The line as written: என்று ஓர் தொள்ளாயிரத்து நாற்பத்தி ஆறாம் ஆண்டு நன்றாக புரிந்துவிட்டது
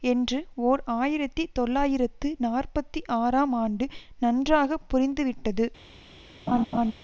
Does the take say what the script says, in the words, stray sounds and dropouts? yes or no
no